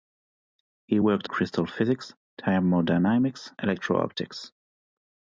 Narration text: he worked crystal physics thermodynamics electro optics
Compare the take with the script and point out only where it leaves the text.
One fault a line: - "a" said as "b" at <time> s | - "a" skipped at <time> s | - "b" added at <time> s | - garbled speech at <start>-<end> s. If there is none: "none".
none